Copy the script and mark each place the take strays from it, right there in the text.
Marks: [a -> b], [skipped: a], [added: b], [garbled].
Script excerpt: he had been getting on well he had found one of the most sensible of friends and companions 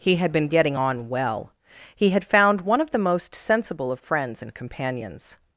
he had been getting on well he had found one of the most sensible of friends and companions